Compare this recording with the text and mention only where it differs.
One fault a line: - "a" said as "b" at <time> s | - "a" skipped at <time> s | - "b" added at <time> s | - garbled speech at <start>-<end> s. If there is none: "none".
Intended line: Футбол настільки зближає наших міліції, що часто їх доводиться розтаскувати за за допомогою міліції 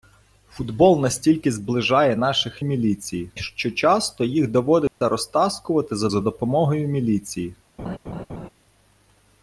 none